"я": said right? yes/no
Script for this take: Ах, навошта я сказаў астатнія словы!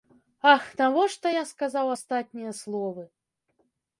yes